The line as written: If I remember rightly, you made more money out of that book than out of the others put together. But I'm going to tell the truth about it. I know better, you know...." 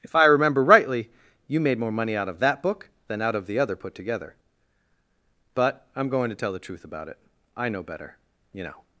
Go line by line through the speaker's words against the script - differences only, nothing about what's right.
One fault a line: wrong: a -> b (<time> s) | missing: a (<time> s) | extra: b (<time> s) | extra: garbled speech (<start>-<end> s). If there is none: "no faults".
wrong: others -> other (3.6 s)